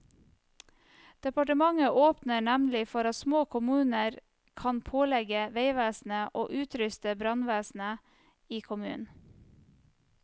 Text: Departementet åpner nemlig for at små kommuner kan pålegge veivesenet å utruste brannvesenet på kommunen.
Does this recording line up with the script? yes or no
no